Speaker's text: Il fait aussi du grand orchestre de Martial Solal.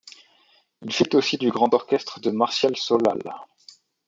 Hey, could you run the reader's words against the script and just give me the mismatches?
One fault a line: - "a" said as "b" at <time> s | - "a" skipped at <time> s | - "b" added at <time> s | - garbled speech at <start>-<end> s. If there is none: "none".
none